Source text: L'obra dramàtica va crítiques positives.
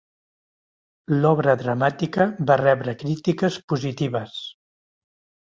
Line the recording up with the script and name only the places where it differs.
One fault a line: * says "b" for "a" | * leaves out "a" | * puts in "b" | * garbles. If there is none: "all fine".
* puts in "rebre"